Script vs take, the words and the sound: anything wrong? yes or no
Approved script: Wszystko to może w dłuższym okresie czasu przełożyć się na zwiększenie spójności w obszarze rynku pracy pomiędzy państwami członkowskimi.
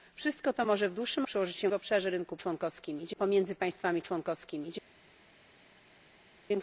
yes